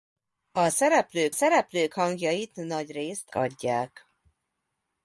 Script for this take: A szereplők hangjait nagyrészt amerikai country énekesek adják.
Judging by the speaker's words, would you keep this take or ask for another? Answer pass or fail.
fail